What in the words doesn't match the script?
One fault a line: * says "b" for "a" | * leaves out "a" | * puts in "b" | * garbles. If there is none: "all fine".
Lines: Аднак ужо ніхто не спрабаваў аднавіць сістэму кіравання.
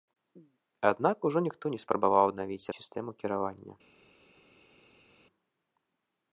all fine